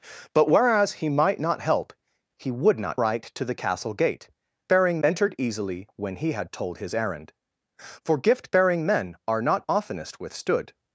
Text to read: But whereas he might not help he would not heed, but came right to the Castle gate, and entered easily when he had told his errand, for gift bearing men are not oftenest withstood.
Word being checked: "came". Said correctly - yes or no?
no